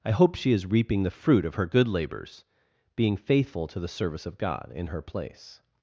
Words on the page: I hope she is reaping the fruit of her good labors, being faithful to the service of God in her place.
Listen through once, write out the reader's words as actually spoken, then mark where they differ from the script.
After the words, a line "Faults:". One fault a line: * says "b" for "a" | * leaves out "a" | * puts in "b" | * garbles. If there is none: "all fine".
I hope she is reaping the fruit of her good labors, being faithful to the service of God in her place.
Faults:
all fine